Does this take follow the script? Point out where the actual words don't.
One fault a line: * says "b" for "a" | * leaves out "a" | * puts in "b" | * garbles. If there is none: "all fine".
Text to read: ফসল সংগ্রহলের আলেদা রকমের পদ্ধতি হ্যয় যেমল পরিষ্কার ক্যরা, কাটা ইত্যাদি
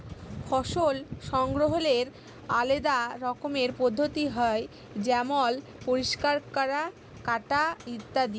all fine